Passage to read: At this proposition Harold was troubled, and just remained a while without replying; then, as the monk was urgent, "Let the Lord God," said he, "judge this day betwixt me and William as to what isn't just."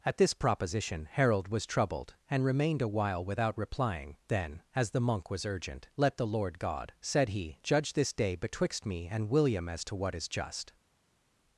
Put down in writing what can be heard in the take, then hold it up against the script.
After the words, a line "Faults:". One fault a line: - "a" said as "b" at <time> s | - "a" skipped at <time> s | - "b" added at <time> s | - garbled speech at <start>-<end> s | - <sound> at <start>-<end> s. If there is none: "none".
At this proposition Harold was troubled, and remained a while without replying; then, as the monk was urgent, "Let the Lord God," said he, "judge this day betwixt me and William as to what is just."
Faults:
- "just" skipped at 2.4 s
- "isn't" said as "is" at 10.2 s